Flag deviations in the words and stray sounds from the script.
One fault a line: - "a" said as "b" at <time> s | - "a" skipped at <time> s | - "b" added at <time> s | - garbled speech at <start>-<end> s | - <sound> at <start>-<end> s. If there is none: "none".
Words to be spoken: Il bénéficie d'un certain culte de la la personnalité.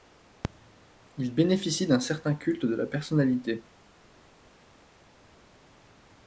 - "la" skipped at 2.9 s